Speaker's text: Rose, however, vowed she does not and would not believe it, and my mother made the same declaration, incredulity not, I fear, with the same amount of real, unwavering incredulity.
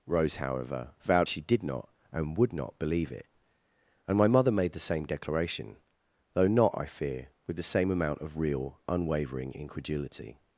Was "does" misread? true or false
true